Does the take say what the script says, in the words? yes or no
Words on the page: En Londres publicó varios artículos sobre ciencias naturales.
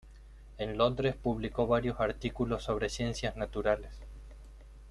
yes